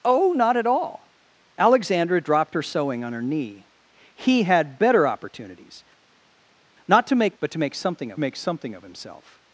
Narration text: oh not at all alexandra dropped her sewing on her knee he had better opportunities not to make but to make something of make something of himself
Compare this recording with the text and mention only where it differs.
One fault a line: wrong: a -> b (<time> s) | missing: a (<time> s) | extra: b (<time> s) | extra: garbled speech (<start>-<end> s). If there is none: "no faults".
no faults